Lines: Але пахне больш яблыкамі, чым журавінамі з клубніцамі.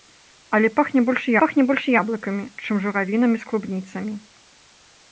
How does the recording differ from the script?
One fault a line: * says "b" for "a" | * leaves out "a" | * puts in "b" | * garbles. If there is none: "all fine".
* puts in "пахне больш"